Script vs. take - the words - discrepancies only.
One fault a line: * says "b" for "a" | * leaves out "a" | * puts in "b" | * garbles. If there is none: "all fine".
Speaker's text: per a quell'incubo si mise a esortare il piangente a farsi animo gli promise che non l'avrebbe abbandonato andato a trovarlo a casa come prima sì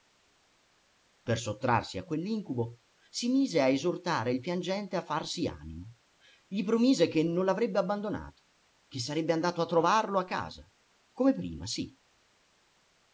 * puts in "sottrarsi"
* puts in "che sarebbe"